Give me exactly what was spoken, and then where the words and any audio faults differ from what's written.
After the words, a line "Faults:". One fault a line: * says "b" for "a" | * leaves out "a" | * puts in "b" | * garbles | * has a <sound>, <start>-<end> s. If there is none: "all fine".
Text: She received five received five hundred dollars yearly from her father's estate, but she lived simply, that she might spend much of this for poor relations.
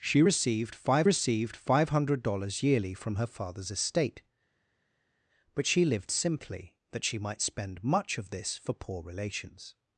She received five received five hundred dollars yearly from her father's estate, but she lived simply, that she might spend much of this for poor relations.
Faults:
all fine